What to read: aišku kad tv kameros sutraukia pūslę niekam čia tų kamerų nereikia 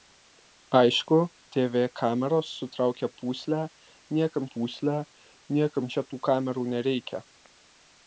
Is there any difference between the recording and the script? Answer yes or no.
yes